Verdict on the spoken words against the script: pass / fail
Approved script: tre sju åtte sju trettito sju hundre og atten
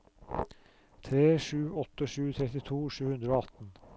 pass